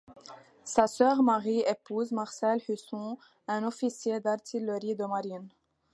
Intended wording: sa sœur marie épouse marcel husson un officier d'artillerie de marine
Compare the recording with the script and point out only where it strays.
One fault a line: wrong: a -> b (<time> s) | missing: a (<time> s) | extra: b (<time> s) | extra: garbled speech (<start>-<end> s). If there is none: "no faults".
no faults